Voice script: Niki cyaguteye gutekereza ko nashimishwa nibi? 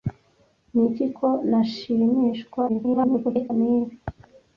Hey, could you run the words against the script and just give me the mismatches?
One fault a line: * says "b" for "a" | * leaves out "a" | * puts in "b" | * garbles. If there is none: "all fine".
* leaves out "cyaguteye gutekereza"
* garbles